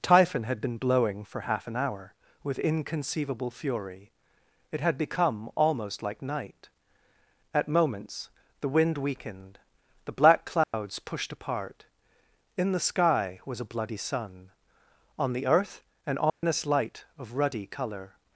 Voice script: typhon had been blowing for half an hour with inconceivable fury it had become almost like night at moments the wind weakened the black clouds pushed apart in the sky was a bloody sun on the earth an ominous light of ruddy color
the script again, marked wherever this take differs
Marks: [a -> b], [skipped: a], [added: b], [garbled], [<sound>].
typhon had been blowing for half an hour with inconceivable fury it had become almost like night at moments the wind weakened the black clouds [dropout] pushed apart in the sky was a bloody sun on the earth an ominous [dropout] light of ruddy color